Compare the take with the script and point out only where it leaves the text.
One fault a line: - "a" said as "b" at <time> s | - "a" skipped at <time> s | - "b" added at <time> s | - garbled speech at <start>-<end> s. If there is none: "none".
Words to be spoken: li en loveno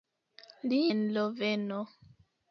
none